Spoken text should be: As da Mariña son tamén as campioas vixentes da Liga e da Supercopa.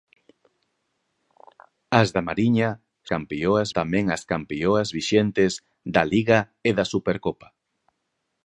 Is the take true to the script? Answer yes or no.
no